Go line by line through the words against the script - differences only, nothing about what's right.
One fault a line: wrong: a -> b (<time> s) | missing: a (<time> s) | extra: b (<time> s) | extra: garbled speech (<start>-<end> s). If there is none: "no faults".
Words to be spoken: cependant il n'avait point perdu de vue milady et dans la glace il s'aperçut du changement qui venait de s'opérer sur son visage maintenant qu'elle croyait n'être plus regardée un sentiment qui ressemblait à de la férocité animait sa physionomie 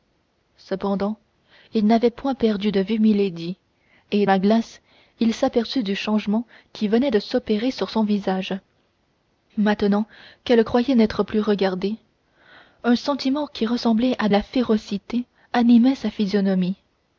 missing: dans (4.2 s)
missing: de (14.3 s)